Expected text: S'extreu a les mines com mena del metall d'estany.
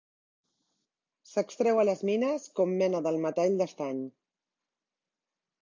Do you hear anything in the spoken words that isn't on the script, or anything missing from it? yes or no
no